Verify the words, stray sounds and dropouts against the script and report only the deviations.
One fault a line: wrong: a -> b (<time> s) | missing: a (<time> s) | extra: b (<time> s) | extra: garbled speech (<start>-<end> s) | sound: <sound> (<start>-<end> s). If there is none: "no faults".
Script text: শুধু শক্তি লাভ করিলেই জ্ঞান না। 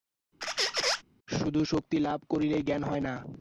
sound: squeak (0.4-1.0 s)
extra: হয় (2.8 s)